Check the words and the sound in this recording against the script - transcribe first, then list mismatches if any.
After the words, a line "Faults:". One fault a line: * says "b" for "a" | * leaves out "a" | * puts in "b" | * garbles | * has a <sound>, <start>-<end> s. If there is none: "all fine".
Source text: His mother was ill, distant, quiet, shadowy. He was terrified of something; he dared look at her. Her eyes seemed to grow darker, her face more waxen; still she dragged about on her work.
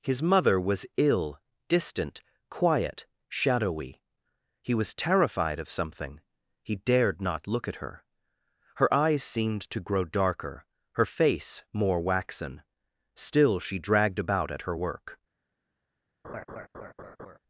His mother was ill, distant, quiet, shadowy. He was terrified of something; he dared not look at her. Her eyes seemed to grow darker, her face more waxen; still she dragged about at her work.
Faults:
* puts in "not"
* says "at" for "on"
* has a laugh, 16.2-17.4 s